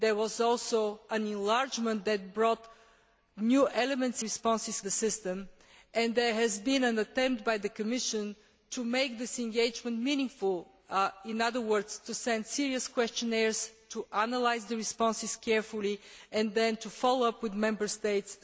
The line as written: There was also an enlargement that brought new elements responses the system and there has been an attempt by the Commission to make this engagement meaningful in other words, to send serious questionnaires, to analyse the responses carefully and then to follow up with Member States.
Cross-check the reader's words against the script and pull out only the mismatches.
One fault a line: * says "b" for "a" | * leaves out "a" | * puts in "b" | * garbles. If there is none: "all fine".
all fine